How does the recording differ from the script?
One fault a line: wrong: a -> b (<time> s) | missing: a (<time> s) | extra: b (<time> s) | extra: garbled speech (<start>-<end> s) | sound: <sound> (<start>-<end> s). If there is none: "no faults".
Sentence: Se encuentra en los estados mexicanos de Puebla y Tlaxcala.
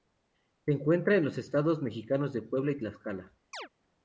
sound: chirp (3.5-3.7 s)